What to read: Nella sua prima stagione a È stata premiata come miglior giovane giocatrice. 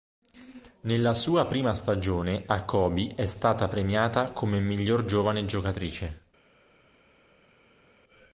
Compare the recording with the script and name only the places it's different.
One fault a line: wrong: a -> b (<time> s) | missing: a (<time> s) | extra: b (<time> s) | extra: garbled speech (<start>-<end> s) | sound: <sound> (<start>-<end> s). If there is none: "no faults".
extra: Kobe (2.6 s)